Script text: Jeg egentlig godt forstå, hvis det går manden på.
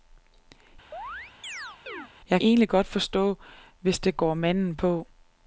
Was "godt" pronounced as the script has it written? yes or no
yes